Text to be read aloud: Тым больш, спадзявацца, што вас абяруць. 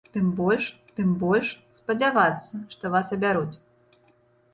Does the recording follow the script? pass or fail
fail